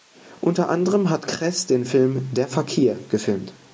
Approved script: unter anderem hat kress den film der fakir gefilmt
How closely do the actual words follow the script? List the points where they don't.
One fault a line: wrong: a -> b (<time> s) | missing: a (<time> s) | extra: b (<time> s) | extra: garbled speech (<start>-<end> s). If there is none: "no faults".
no faults